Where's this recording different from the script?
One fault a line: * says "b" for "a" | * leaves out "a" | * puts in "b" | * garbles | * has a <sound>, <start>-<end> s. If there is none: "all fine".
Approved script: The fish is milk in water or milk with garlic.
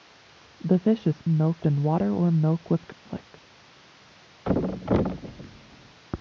* has a dropout, 2.9-3.1 s
* has a thud, 4.4-6.0 s